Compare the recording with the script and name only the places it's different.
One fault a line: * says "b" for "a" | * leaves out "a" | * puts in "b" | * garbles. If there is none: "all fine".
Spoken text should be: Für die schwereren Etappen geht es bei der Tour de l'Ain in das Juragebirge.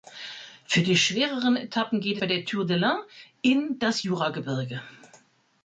* leaves out "es"